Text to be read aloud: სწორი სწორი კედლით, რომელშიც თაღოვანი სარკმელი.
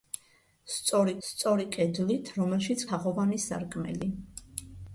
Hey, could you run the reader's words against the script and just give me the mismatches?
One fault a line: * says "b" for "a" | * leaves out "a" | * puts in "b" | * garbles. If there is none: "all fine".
all fine